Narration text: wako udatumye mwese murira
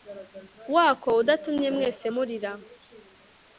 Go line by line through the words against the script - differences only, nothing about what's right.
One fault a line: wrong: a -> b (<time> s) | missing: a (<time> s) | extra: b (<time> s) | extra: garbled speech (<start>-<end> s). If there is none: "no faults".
no faults